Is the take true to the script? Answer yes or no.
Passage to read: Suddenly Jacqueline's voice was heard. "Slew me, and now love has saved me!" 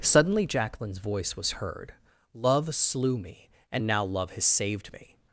no